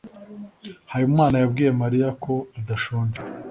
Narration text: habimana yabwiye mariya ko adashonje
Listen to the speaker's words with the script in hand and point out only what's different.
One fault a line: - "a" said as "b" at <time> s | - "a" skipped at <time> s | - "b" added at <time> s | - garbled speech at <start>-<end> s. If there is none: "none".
none